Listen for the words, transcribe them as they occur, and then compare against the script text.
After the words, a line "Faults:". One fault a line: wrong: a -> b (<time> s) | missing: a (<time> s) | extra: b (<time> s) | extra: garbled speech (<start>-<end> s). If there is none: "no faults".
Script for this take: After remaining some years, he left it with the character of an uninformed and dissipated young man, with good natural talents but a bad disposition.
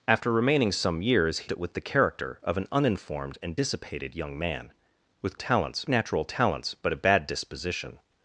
After remaining some years, he it with the character of an uninformed and dissipated young man, with talents natural talents but a bad disposition.
Faults:
missing: left (1.5 s)
wrong: good -> talents (5.3 s)